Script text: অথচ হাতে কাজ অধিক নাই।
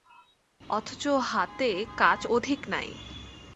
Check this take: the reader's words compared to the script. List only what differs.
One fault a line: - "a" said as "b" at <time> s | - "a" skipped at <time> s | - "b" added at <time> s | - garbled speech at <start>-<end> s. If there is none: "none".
none